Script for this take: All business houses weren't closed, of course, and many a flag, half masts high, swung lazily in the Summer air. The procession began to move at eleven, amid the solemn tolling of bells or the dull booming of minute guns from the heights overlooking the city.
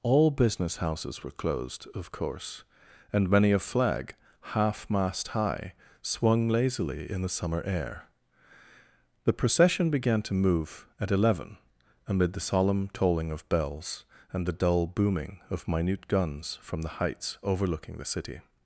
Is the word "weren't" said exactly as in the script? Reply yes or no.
no